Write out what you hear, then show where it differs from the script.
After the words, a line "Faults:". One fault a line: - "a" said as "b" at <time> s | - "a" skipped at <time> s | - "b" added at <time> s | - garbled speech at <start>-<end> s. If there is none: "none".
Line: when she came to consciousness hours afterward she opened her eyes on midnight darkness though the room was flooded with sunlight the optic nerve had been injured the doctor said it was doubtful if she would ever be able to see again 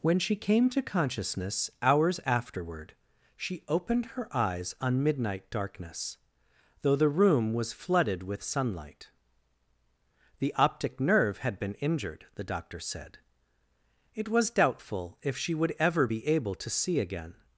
when she came to consciousness hours afterward she opened her eyes on midnight darkness though the room was flooded with sunlight the optic nerve had been injured the doctor said it was doubtful if she would ever be able to see again
Faults:
none